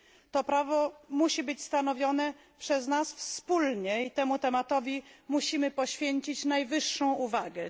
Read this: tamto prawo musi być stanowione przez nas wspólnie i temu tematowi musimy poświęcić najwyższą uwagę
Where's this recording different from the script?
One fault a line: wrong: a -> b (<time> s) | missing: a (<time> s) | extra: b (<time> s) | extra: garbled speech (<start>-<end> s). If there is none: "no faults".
wrong: tamto -> to (0.3 s)